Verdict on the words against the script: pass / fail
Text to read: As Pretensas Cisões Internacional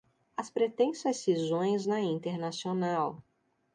fail